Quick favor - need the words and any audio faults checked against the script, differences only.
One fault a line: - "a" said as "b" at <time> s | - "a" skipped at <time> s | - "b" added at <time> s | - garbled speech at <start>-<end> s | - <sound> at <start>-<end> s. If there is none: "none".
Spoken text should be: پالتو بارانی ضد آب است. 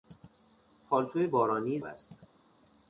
- "ضد آب" skipped at 1.8 s